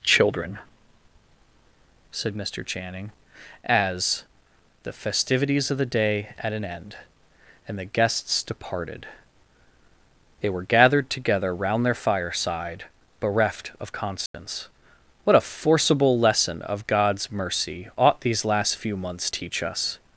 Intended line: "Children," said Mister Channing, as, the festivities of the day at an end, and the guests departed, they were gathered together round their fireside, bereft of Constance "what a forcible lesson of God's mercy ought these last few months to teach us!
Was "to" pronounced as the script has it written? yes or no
no